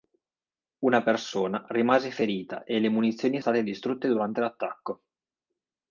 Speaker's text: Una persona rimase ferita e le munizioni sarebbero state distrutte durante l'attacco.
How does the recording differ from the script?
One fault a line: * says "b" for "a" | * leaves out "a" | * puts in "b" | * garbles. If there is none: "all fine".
* leaves out "sarebbero"